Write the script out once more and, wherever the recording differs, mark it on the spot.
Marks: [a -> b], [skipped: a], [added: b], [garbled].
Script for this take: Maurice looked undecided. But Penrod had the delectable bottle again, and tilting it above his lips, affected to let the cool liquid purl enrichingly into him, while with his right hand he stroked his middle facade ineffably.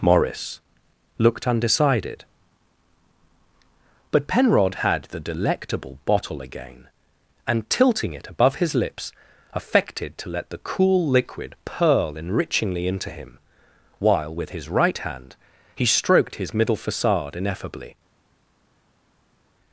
Maurice looked undecided. But Penrod had the delectable bottle again, and tilting it above his lips, affected to let the cool liquid purl enrichingly into him, while with his right hand he stroked his middle facade ineffably.